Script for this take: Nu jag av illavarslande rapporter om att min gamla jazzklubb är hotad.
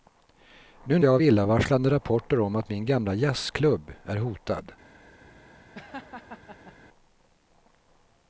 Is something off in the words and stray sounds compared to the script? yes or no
yes